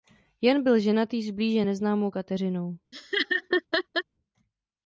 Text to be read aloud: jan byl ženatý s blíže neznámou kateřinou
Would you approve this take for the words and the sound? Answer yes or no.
no